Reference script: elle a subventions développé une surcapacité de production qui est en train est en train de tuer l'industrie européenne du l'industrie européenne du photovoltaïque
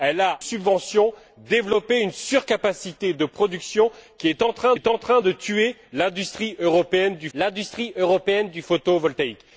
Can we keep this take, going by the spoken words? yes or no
yes